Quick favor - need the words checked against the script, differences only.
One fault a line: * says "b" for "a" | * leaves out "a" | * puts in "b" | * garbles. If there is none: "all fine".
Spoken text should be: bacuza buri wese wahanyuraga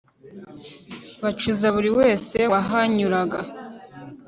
all fine